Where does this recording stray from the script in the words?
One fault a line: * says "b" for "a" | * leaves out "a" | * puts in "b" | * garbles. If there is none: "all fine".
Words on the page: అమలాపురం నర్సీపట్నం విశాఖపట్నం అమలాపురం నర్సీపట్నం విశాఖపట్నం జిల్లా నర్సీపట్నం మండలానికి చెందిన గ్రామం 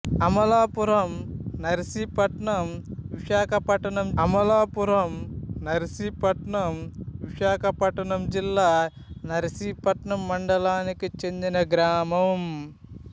all fine